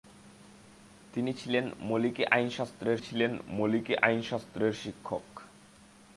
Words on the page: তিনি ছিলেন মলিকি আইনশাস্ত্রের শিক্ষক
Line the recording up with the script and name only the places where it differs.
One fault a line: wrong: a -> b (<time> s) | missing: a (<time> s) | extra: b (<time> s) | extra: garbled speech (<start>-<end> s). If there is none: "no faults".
extra: ছিলেন মলিকি আইনশাস্ত্রের (3.0 s)